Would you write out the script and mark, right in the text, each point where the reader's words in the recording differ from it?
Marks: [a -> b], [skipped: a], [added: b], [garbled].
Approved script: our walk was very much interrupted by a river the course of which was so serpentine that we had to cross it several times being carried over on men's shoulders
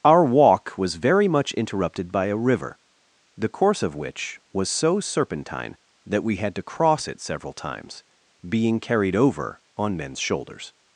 our walk was very much interrupted by a river the course of which was so serpentine that we had to cross it several times being carried over on men's shoulders